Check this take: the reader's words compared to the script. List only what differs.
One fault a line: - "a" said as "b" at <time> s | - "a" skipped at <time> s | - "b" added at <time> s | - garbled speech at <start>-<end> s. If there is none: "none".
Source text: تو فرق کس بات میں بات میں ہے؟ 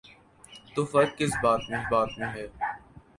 none